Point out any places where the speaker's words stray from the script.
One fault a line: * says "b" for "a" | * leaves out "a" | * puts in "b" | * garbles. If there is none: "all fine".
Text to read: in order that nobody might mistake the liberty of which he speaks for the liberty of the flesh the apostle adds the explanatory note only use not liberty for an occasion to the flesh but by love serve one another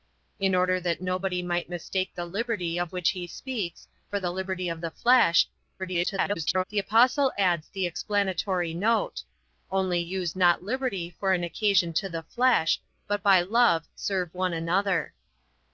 * garbles